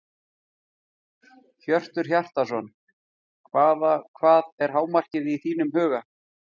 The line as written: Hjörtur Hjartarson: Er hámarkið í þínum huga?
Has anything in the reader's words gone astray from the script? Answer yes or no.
yes